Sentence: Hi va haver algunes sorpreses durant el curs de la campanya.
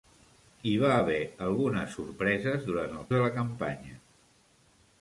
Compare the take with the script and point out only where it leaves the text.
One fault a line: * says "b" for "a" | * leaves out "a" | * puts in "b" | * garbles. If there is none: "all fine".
* leaves out "curs"